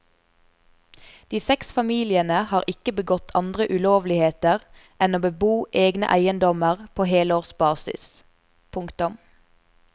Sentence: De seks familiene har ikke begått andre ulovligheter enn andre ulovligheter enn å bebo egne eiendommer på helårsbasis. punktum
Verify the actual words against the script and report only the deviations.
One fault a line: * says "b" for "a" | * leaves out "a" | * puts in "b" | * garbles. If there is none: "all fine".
* leaves out "andre ulovligheter enn"